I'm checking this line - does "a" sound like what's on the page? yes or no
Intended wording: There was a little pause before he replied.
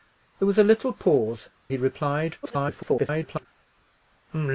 yes